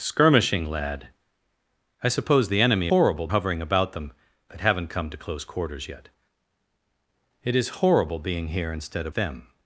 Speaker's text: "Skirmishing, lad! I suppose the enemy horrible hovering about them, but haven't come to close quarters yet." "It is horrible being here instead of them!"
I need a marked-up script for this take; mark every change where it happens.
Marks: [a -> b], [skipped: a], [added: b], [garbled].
"Skirmishing, lad! I suppose the enemy horrible hovering about them, but haven't come to close quarters yet." "It is horrible being here instead of them!"